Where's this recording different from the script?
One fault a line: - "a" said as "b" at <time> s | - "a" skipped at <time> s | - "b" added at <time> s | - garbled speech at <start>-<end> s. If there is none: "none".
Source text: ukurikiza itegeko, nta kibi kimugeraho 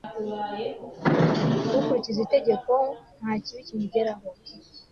none